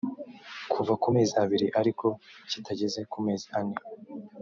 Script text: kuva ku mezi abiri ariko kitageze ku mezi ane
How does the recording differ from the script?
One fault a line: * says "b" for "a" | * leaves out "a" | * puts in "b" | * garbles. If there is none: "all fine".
all fine